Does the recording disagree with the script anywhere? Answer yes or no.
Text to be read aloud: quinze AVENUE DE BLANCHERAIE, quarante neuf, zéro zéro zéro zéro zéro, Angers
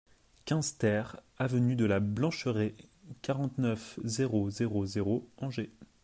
yes